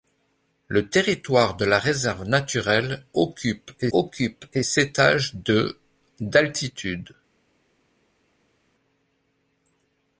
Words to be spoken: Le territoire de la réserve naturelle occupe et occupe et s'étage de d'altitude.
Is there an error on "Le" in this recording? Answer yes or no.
no